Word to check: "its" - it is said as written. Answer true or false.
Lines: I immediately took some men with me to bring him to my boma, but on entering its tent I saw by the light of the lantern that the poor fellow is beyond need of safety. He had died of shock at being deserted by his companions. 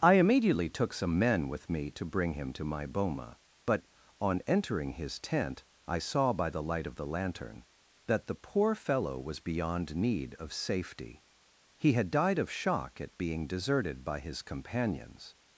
false